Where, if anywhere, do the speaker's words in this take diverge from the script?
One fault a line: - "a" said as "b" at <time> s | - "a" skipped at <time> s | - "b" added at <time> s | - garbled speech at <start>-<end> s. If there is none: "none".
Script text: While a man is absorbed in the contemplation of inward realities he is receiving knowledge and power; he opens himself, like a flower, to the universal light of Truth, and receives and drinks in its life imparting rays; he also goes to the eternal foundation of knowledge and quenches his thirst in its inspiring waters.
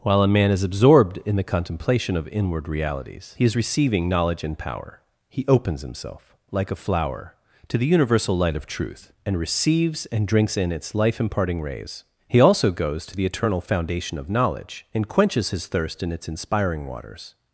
none